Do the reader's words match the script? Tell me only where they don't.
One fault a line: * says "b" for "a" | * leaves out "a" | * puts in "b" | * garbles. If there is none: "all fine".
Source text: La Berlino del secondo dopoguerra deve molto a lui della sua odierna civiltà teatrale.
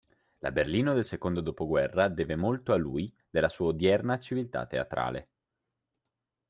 all fine